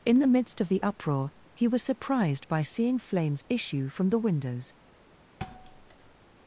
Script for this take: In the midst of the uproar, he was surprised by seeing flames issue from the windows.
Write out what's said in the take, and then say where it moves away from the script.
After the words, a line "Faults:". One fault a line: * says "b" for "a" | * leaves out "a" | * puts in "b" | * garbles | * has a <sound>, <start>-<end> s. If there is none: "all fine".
In the midst of the uproar, he was surprised by seeing flames issue from the windows.
Faults:
* has a thud, 5.4-6.2 s